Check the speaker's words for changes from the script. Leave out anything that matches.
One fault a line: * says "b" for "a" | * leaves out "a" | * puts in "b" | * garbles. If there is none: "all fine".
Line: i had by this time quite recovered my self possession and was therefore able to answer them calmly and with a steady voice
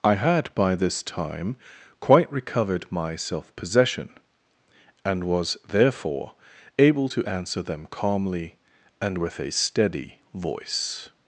all fine